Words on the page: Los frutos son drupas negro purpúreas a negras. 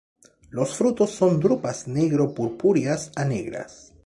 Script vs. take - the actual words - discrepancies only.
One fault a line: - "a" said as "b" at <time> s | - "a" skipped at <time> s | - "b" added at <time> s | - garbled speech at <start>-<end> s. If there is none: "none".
none